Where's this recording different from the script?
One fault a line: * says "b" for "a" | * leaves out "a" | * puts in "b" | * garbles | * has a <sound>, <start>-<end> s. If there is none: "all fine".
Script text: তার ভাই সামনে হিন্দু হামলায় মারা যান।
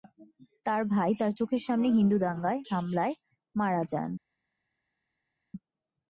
* puts in "তার চোখের"
* puts in "দাঙ্গায়"